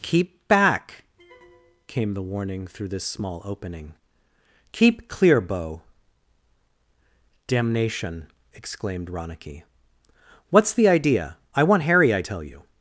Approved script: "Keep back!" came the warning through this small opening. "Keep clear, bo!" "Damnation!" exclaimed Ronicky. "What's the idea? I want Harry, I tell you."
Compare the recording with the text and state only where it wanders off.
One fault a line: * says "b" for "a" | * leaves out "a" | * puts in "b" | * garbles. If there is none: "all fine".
all fine